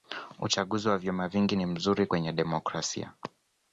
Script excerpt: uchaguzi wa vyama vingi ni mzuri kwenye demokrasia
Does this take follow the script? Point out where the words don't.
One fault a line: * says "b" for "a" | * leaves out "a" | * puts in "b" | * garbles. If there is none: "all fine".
all fine